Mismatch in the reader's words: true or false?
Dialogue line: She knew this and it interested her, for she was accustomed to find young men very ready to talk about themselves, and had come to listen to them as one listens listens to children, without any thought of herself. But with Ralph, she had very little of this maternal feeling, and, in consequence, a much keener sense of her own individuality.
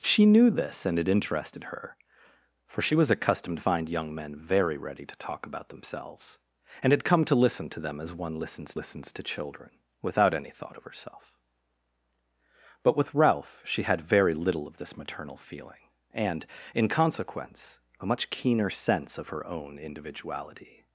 false